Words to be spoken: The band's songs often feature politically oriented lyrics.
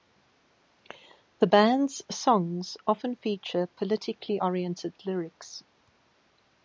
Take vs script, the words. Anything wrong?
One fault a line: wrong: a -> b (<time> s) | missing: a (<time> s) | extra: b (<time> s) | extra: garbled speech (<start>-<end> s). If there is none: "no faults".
no faults